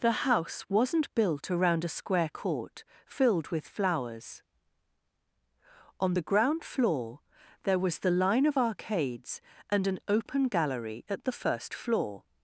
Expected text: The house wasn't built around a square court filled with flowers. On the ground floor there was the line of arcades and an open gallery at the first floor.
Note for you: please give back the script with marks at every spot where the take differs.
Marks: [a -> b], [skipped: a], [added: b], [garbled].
The house wasn't built around a square court filled with flowers. On the ground floor there was the line of arcades and an open gallery at the first floor.